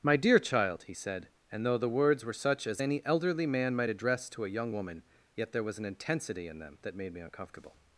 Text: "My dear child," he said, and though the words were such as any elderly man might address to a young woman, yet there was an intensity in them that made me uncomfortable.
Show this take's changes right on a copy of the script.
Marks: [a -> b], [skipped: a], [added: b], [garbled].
"My dear child," he said, and though the words were such as any elderly man might address to a young woman, yet there was an intensity in them that made me uncomfortable.